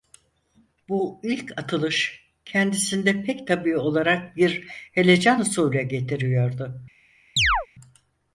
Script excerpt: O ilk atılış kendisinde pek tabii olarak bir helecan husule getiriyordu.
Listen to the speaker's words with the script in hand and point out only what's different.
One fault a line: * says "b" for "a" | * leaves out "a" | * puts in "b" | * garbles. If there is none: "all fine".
* says "Bu" for "O"